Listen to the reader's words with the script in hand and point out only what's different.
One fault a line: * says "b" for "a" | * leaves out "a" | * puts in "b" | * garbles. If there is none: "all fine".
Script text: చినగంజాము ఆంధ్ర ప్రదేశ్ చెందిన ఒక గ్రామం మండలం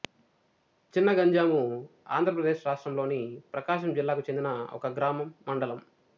* puts in "రాష్ట్రములోని ప్రకాశం జిల్లాకు"